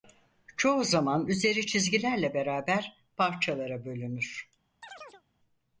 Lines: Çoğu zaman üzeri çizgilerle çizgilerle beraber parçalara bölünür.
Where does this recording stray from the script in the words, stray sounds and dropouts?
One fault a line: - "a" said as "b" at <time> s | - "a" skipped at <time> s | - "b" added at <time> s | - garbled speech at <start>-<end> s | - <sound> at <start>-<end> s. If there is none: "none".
- "çizgilerle" skipped at 2.3 s
- chirp at 4.8-5.2 s